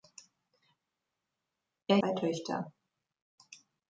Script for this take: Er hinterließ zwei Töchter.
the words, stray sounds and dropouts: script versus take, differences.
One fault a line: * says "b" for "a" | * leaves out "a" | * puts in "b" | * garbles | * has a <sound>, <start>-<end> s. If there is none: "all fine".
* leaves out "hinterließ"